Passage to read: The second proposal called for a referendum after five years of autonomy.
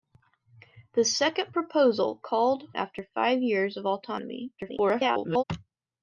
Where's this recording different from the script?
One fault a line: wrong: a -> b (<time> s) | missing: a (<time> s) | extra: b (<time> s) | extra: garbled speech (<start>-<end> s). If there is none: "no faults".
missing: for a referendum (2.7 s)
extra: garbled speech (4.6-5.4 s)